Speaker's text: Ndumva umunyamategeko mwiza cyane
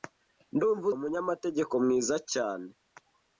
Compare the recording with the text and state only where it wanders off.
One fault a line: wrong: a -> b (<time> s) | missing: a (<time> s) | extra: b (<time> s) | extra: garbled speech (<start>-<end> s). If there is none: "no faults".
no faults